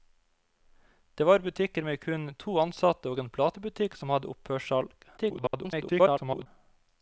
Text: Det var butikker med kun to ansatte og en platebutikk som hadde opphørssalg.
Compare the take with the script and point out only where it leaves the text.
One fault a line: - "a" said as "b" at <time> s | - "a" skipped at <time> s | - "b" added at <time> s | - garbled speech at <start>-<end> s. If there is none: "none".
- garbled speech at 5.2-6.5 s